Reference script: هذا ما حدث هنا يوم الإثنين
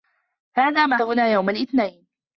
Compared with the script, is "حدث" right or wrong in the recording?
wrong